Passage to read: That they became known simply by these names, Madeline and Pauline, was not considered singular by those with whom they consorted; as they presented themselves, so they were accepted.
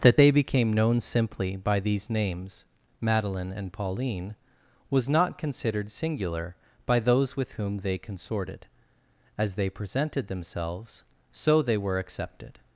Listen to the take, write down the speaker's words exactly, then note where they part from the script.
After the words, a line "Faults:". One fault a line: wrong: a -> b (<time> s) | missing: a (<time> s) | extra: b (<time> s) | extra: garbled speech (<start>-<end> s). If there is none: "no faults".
That they became known simply by these names, Madeline and Pauline, was not considered singular by those with whom they consorted; as they presented themselves, so they were accepted.
Faults:
no faults